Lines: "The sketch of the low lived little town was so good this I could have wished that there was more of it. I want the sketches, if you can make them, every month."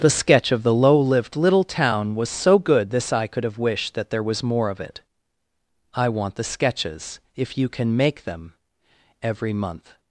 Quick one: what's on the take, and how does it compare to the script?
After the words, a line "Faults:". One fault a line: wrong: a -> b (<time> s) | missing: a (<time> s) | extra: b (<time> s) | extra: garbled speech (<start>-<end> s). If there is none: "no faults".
"The sketch of the low lived little town was so good this I could have wished that there was more of it. I want the sketches, if you can make them, every month."
Faults:
no faults